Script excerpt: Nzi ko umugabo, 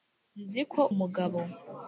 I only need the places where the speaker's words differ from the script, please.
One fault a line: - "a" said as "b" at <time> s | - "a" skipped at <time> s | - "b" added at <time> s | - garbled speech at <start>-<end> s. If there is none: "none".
none